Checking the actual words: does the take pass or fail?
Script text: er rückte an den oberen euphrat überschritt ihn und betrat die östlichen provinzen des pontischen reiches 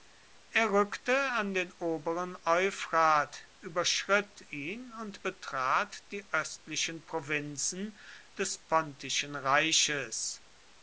pass